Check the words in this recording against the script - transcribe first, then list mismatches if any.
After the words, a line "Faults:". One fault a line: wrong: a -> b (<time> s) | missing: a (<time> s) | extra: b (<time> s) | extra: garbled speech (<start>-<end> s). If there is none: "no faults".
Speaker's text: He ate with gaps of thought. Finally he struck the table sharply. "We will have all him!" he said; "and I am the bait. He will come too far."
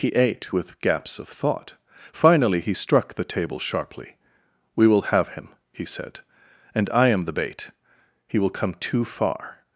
He ate with gaps of thought. Finally he struck the table sharply. "We will have him!" he said; "and I am the bait. He will come too far."
Faults:
missing: all (5.3 s)